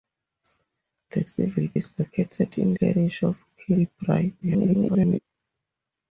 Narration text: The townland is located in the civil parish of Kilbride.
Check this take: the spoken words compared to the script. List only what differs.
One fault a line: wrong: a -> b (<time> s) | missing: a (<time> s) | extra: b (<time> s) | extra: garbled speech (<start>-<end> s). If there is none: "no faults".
wrong: townland -> civil (1.2 s)
missing: the civil (2.7 s)
extra: garbled speech (4.4-5.2 s)